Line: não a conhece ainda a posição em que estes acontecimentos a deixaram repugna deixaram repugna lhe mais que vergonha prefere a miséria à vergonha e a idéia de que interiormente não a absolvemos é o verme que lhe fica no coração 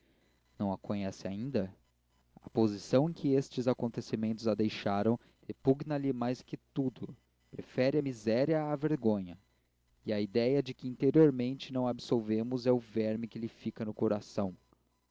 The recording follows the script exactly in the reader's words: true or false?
false